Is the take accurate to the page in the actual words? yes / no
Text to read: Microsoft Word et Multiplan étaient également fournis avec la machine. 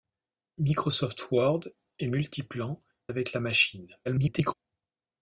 no